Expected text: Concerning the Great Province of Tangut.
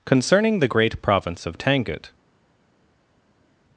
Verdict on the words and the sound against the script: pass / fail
pass